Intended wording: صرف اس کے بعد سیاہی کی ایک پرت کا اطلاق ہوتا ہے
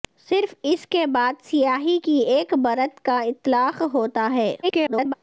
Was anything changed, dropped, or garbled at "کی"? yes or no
no